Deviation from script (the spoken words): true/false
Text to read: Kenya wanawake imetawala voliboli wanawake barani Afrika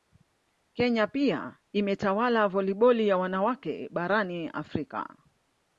true